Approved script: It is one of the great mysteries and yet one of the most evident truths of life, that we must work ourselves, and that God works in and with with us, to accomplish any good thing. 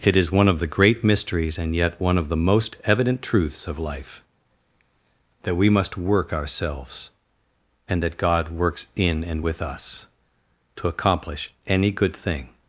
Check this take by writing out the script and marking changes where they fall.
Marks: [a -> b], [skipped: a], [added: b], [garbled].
It is one of the great mysteries and yet one of the most evident truths of life, that we must work ourselves, and that God works in and with [skipped: with] us, to accomplish any good thing.